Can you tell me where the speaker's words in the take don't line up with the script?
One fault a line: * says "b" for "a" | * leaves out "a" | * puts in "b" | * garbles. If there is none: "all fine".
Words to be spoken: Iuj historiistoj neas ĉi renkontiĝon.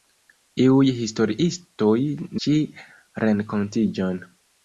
* leaves out "neas"